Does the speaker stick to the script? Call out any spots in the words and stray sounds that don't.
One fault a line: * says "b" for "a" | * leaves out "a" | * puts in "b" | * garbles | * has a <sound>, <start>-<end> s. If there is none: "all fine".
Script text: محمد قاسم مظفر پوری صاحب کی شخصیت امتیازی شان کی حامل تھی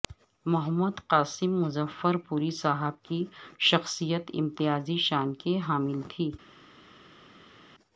all fine